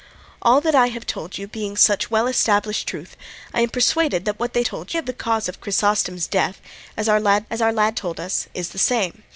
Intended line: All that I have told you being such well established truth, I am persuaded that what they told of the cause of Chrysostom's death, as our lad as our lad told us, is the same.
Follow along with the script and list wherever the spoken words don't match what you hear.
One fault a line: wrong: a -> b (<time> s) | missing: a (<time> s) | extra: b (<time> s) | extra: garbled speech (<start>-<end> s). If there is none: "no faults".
no faults